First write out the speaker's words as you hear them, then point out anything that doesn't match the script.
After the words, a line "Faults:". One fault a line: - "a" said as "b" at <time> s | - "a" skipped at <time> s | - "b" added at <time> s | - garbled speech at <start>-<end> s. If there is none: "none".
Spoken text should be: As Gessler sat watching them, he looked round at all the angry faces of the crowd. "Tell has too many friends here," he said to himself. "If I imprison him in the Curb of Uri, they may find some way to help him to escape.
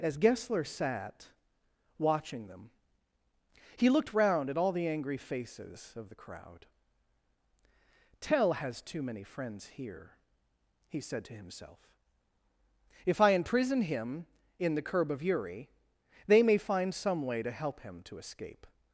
As Gessler sat watching them, he looked round at all the angry faces of the crowd. "Tell has too many friends here," he said to himself. "If I imprison him in the Curb of Uri, they may find some way to help him to escape.
Faults:
none